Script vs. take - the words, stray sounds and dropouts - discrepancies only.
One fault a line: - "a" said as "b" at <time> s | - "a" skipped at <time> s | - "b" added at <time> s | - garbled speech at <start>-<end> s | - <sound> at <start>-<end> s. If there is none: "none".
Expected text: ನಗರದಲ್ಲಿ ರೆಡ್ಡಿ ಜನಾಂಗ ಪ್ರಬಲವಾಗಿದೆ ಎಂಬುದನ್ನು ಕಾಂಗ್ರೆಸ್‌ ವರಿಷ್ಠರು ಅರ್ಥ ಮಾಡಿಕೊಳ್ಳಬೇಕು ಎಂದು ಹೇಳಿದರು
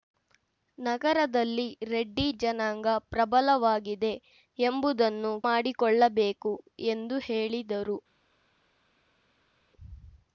- "ಕಾಂಗ್ರೆಸ್ ವರಿಷ್ಠರು ಅರ್ಥ" skipped at 5.3 s